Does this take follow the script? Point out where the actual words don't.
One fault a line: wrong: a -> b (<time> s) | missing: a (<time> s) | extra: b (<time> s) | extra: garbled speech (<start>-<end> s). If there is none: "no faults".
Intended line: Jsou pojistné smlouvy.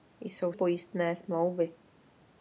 no faults